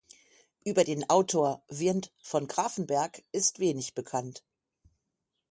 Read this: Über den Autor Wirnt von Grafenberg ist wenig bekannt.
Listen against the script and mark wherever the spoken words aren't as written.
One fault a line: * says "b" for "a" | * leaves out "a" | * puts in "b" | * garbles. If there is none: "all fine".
all fine